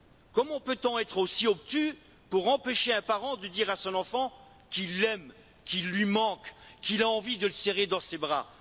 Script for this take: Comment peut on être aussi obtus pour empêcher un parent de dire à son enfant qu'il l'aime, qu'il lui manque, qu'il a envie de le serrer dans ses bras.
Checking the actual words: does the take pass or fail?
pass